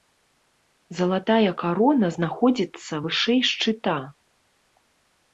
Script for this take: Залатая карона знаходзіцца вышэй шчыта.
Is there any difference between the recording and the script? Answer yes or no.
no